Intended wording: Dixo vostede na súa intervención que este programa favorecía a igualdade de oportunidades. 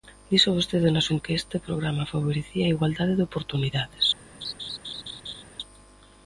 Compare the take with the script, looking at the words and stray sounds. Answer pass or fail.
fail